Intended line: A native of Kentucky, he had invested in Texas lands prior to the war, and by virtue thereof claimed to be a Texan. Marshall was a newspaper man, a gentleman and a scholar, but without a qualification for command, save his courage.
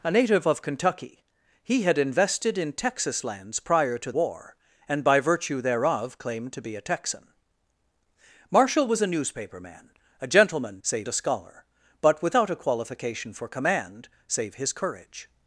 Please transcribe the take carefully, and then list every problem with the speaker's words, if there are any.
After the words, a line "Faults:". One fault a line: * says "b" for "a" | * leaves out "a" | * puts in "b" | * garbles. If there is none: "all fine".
A native of Kentucky, he had invested in Texas lands prior to war, and by virtue thereof claimed to be a Texan. Marshall was a newspaper man, a gentleman save a scholar, but without a qualification for command, save his courage.
Faults:
* leaves out "the"
* says "save" for "and"